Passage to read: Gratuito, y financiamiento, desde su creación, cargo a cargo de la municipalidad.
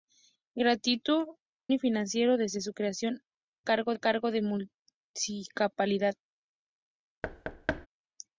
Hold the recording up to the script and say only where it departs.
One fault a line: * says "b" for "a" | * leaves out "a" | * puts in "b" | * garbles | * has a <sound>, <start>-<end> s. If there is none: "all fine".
* has a thud, 7.2-7.9 s